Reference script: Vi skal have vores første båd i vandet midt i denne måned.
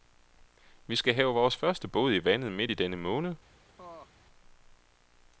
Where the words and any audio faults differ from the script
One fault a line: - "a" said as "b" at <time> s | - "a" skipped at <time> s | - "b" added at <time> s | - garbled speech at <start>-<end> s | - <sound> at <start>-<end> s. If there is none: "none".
- laugh at 3.8-4.1 s